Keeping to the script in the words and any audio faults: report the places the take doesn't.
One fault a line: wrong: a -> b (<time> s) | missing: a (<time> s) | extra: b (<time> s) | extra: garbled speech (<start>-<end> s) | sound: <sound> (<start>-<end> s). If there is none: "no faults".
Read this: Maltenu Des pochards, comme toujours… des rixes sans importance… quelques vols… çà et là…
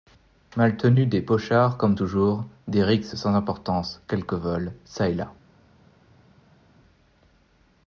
no faults